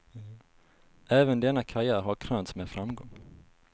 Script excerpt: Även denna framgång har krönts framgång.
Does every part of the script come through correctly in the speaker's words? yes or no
no